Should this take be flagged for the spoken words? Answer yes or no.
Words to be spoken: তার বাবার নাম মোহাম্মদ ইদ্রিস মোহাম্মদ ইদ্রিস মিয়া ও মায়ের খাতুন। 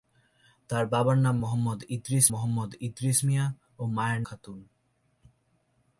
no